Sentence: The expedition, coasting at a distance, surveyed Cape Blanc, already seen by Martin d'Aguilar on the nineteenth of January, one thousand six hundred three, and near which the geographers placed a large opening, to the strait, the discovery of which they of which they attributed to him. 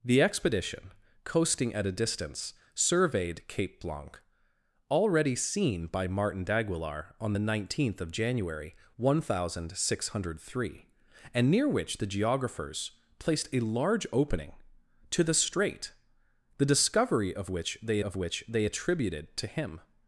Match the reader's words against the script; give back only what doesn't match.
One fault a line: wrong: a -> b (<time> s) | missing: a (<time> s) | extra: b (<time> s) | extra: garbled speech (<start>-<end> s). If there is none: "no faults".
no faults